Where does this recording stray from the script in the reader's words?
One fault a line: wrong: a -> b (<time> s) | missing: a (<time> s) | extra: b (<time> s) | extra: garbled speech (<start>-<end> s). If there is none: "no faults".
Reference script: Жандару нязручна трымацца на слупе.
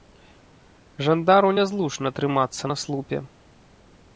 no faults